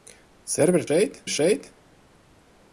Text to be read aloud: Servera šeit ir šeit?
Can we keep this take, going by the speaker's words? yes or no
yes